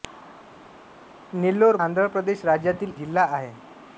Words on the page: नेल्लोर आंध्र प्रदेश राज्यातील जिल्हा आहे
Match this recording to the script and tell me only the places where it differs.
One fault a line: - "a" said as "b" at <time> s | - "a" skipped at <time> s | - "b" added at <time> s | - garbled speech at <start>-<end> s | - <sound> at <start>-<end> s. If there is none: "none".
none